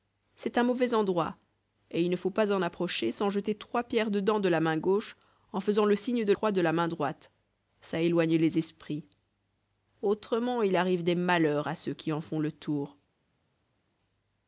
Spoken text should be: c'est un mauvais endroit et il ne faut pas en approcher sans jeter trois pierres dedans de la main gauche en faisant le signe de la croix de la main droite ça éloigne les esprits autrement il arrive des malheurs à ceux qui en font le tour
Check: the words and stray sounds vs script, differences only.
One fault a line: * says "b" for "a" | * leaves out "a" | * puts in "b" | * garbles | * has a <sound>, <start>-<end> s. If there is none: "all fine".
* leaves out "la"